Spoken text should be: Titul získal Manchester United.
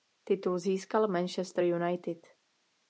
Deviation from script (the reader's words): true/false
false